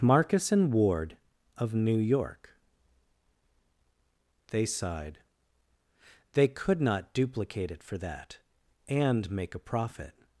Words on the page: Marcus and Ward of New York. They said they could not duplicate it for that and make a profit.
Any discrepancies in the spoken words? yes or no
yes